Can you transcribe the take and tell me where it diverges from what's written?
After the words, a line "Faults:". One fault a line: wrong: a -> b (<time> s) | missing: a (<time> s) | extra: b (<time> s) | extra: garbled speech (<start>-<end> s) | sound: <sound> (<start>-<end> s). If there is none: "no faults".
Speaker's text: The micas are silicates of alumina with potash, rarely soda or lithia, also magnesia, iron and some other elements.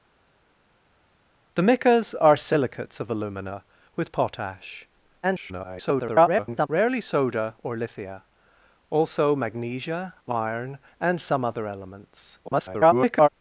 The micas are silicates of alumina with potash, [garbled] rarely soda or lithia, also magnesia, iron and some other elements. [garbled]
Faults:
extra: garbled speech (5.2-6.7 s)
extra: garbled speech (12.4-13.3 s)